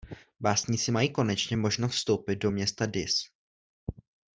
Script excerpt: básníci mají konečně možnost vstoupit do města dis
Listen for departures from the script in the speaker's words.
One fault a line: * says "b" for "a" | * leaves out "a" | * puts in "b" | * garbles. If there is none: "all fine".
all fine